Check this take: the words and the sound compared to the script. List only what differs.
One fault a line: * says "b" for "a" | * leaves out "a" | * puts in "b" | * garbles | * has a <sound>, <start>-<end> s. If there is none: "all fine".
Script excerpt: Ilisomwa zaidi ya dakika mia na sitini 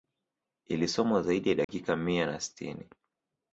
* has a dropout, 1.6-1.7 s